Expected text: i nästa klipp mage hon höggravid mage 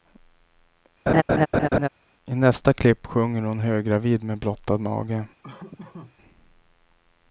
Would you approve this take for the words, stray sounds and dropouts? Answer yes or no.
no